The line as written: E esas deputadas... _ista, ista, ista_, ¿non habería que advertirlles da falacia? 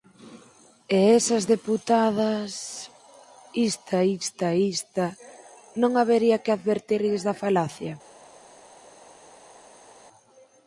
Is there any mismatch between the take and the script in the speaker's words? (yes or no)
no